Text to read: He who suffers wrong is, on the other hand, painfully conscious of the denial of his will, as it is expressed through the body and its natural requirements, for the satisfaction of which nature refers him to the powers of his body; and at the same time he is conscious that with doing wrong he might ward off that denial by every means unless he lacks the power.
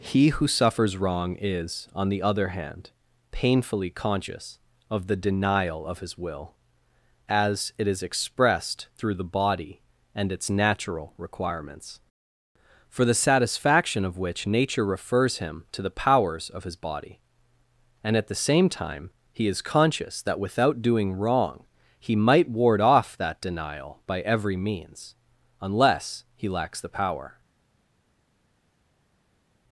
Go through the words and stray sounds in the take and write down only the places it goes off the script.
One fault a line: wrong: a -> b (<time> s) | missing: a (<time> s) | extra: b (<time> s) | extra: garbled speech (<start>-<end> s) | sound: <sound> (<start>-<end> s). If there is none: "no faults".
wrong: with -> without (20.4 s)